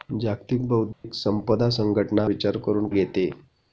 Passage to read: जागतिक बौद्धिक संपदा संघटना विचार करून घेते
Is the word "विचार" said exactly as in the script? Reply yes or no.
yes